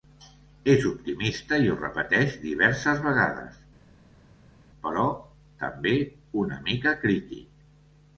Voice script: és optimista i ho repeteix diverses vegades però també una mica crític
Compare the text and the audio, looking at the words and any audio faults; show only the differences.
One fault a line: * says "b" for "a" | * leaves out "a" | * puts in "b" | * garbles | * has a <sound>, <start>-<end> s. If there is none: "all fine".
all fine